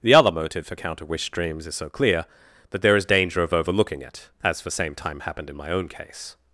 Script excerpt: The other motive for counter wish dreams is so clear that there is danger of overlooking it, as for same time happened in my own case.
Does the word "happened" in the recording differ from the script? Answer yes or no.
no